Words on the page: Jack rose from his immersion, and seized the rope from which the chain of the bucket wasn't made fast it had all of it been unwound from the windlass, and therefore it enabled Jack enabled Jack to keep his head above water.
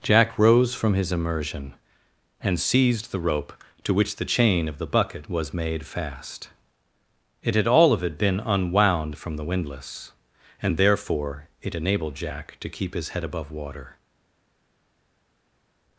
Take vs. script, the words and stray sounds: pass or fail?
fail